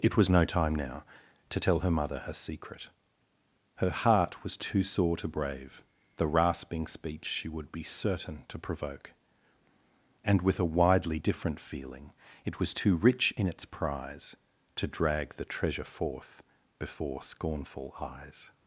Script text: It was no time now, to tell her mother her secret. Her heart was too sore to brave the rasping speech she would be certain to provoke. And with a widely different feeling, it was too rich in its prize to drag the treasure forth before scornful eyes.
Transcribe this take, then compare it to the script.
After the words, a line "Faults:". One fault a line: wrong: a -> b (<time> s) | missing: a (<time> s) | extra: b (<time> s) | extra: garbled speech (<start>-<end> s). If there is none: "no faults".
It was no time now, to tell her mother her secret. Her heart was too sore to brave the rasping speech she would be certain to provoke. And with a widely different feeling, it was too rich in its prize to drag the treasure forth before scornful eyes.
Faults:
no faults